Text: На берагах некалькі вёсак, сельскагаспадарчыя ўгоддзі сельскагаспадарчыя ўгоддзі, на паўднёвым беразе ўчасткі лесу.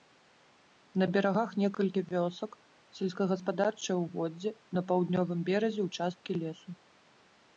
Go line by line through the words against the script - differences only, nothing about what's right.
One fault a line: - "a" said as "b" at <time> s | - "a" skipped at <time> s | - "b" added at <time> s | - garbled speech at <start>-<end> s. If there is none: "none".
- "сельскагаспадарчыя ўгоддзі" skipped at 4.5 s